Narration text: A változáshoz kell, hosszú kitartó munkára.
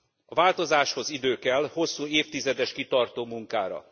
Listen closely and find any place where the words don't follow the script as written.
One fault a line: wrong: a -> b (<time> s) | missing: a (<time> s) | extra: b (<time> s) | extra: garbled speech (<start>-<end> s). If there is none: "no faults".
extra: idő (1.1 s)
extra: évtizedes (2.0 s)